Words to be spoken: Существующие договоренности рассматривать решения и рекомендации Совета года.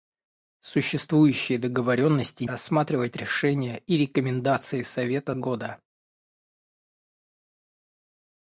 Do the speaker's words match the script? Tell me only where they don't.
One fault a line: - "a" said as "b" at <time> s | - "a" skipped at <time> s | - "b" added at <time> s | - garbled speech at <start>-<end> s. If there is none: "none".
none